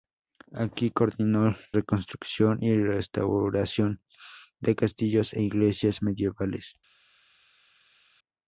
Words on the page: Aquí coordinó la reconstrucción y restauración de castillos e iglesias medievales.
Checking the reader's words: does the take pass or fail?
fail